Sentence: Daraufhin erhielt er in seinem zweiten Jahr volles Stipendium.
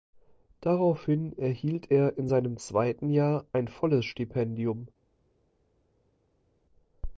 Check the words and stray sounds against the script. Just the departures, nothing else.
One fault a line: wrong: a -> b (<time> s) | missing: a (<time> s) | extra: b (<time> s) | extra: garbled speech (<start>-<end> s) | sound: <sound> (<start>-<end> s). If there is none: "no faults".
extra: ein (3.5 s)